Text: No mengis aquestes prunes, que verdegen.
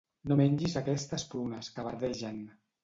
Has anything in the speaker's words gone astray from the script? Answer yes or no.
no